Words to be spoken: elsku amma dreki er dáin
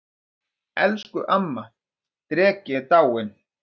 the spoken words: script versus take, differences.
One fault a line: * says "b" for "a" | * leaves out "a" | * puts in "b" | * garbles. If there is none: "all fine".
all fine